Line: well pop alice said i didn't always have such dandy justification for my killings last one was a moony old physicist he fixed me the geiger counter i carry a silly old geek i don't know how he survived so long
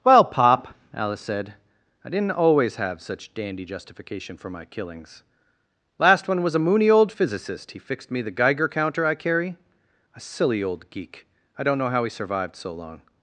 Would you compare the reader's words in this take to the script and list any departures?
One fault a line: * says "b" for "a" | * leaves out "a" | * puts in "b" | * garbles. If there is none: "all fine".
all fine